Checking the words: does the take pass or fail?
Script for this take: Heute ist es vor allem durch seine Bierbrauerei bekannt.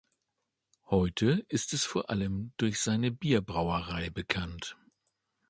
pass